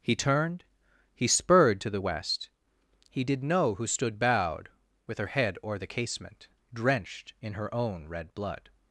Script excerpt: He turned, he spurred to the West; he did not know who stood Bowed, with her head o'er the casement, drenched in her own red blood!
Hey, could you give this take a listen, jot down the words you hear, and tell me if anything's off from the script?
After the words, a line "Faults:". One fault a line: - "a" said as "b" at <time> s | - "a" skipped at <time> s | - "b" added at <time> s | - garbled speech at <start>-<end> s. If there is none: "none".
He turned, he spurred to the West; he did know who stood Bowed, with her head o'er the casement, drenched in her own red blood!
Faults:
- "not" skipped at 3.4 s